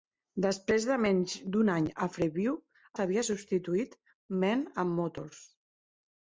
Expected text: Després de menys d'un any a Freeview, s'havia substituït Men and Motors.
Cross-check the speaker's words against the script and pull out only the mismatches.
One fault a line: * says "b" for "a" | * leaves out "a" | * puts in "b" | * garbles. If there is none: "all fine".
all fine